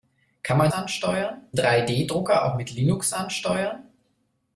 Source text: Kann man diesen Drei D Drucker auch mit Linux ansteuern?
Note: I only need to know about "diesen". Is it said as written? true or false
false